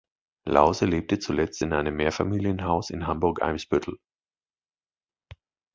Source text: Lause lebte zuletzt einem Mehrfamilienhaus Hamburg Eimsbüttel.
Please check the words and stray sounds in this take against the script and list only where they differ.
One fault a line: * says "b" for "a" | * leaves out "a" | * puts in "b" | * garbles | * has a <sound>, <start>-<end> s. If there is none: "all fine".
* puts in "in"
* puts in "in"